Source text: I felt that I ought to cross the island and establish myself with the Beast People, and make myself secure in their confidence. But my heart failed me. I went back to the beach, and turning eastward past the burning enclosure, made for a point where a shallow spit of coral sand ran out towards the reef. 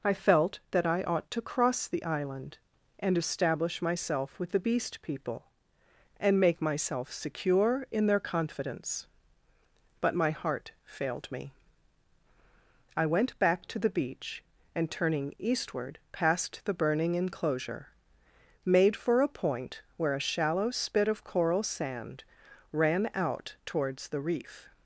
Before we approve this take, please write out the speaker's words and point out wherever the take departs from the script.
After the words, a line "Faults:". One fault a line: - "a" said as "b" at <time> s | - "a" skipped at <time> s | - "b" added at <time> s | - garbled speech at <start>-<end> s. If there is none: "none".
I felt that I ought to cross the island and establish myself with the Beast People, and make myself secure in their confidence. But my heart failed me. I went back to the beach, and turning eastward past the burning enclosure, made for a point where a shallow spit of coral sand ran out towards the reef.
Faults:
none